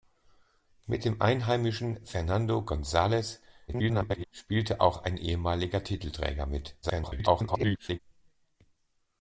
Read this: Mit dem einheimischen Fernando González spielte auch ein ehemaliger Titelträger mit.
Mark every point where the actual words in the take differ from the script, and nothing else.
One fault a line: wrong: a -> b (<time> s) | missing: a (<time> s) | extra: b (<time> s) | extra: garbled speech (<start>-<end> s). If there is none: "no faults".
extra: garbled speech (3.7-4.2 s)
extra: garbled speech (6.8-8.0 s)